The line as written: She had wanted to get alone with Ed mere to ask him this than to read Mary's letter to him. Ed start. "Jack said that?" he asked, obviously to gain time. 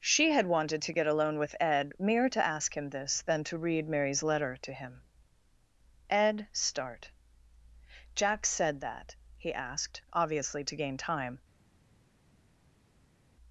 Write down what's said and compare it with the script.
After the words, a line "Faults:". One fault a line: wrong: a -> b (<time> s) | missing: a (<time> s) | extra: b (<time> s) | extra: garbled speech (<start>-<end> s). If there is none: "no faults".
She had wanted to get alone with Ed mere to ask him this than to read Mary's letter to him. Ed start. "Jack said that?" he asked, obviously to gain time.
Faults:
no faults